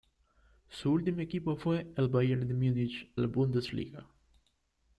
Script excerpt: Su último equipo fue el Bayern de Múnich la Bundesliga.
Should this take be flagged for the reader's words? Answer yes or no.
no